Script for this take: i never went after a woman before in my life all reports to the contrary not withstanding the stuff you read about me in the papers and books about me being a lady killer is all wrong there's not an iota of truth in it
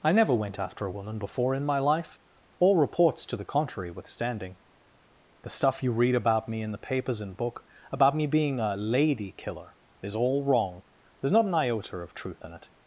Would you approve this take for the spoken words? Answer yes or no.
no